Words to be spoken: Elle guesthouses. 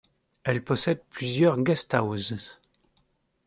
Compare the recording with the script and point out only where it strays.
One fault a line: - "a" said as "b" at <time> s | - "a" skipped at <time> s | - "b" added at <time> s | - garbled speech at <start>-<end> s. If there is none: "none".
- "possède plusieurs" added at 0.6 s